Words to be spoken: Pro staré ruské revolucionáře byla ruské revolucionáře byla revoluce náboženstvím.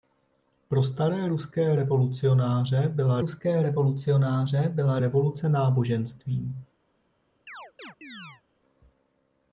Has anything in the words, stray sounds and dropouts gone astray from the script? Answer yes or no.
yes